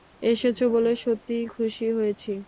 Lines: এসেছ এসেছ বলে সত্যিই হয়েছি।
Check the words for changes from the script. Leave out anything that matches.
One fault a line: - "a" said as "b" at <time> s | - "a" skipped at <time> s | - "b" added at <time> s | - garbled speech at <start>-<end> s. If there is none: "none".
- "এসেছ" skipped at 0.6 s
- "খুশি" added at 1.5 s